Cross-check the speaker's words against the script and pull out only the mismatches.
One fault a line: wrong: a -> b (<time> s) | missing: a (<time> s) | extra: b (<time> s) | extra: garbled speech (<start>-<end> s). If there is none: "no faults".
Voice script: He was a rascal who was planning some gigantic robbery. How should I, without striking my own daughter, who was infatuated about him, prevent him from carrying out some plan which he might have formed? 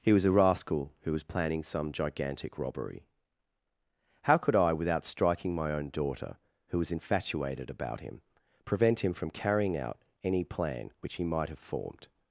wrong: should -> could (4.4 s)
wrong: some -> any (10.2 s)